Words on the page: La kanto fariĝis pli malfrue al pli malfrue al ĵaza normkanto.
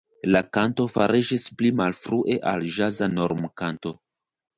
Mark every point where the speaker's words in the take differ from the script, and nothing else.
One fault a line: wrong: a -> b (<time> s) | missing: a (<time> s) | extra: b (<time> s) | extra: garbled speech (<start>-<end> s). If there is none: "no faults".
missing: pli malfrue al (2.6 s)